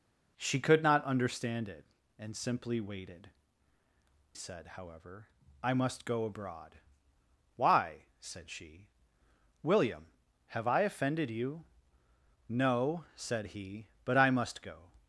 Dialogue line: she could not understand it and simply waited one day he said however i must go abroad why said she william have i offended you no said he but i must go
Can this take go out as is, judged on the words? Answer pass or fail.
fail